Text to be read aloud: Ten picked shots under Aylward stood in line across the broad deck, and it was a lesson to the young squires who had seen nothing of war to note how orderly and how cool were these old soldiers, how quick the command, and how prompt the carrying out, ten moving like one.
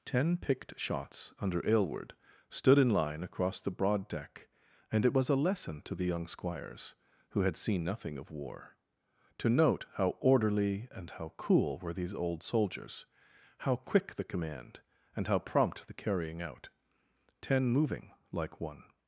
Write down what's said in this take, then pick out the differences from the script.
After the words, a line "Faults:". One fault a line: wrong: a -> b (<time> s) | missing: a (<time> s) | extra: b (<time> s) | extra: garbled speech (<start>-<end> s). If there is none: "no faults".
Ten picked shots under Aylward stood in line across the broad deck, and it was a lesson to the young squires who had seen nothing of war to note how orderly and how cool were these old soldiers, how quick the command, and how prompt the carrying out, ten moving like one.
Faults:
no faults